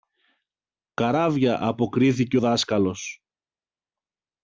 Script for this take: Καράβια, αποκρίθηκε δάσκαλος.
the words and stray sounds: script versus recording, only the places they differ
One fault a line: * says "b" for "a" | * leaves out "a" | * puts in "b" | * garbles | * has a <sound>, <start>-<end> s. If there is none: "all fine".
all fine